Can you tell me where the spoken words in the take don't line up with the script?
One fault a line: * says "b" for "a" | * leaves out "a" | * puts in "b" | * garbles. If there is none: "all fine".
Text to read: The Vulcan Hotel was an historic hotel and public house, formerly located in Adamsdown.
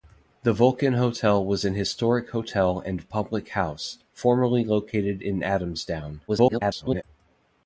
* garbles